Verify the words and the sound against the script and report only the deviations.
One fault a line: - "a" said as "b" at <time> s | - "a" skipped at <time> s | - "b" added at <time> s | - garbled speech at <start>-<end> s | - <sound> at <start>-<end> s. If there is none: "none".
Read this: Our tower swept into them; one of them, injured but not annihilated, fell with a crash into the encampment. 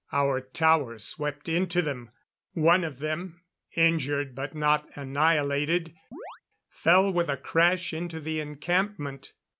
- chirp at 6.1-6.4 s